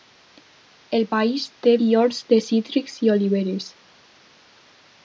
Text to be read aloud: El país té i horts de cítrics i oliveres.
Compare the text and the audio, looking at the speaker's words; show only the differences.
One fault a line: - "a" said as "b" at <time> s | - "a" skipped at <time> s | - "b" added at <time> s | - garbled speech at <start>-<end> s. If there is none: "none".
none